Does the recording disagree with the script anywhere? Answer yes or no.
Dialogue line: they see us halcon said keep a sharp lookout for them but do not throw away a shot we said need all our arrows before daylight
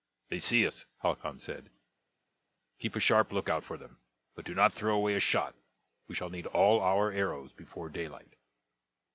yes